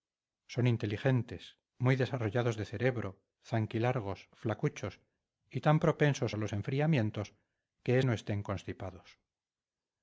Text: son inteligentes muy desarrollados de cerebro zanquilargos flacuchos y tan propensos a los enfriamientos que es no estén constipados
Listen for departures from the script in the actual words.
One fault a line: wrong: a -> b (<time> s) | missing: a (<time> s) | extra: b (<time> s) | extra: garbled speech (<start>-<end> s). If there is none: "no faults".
no faults